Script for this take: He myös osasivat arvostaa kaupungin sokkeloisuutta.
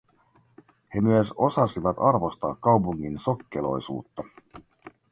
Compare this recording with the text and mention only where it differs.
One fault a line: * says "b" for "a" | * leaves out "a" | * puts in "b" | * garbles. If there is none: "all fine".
all fine